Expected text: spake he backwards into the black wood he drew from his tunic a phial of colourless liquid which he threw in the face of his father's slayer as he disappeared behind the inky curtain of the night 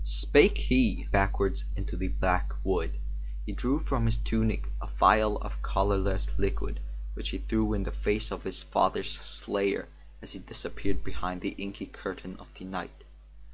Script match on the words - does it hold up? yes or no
yes